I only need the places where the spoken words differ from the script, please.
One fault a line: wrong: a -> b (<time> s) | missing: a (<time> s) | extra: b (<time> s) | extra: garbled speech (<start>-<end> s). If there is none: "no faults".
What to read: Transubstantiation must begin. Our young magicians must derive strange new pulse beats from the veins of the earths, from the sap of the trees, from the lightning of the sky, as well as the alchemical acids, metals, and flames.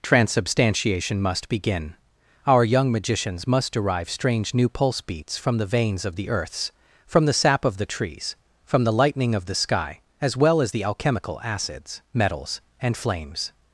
no faults